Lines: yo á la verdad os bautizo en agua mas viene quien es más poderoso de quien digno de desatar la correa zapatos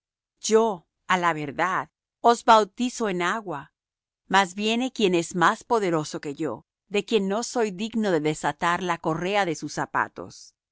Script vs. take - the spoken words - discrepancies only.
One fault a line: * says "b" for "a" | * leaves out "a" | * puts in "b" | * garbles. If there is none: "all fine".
* puts in "que yo"
* puts in "no soy"
* puts in "de sus"